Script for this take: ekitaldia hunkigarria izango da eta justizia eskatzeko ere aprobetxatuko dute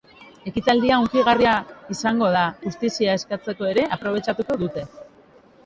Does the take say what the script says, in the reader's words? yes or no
no